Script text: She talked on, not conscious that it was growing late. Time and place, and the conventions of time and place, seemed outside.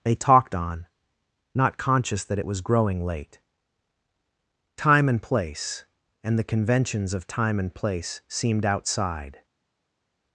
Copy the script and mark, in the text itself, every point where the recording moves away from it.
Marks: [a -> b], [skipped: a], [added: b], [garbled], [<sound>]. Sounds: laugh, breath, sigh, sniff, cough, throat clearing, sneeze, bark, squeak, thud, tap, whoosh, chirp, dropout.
[She -> They] talked on, not conscious that it was growing late. Time and place, and the conventions of time and place, seemed outside.